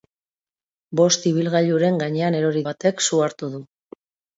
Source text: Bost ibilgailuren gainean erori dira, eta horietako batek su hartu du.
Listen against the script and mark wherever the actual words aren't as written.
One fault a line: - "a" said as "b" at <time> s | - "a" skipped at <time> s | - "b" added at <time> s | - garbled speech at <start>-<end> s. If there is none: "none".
- "dira eta horietako" skipped at 2.6 s